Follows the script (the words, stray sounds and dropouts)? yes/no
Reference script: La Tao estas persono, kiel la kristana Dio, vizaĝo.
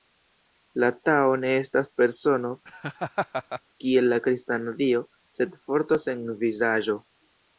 no